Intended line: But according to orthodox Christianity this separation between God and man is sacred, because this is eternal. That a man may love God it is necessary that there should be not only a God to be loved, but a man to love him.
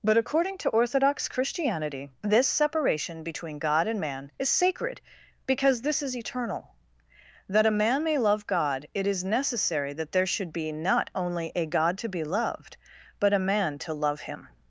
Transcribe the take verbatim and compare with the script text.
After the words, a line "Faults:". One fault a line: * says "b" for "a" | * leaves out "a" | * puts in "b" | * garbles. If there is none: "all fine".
But according to orthodox Christianity this separation between God and man is sacred, because this is eternal. That a man may love God it is necessary that there should be not only a God to be loved, but a man to love him.
Faults:
all fine